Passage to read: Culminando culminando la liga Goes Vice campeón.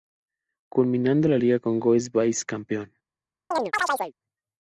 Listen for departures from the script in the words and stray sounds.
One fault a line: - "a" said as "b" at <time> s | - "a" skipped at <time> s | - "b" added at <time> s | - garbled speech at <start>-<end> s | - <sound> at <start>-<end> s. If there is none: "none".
- "culminando" skipped at 1.3 s
- "con" added at 1.6 s
- chirp at 3.5-4.1 s